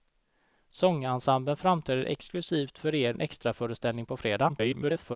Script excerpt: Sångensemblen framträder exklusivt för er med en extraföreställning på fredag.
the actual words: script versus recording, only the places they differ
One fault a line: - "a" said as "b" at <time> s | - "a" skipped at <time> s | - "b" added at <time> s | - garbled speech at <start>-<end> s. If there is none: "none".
- "med" skipped at 3.1 s
- garbled speech at 4.5-5.2 s